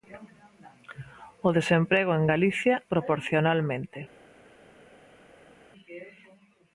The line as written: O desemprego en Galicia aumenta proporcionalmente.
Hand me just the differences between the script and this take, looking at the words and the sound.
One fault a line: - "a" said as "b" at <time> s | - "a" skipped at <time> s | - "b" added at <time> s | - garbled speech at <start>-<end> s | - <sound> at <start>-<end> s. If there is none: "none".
- "aumenta" skipped at 2.8 s